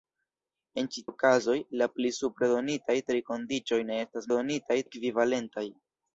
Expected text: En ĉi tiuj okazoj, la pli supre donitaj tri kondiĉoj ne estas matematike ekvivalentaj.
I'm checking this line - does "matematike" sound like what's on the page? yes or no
no